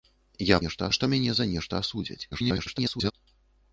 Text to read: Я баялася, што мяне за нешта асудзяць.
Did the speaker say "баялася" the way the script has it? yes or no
no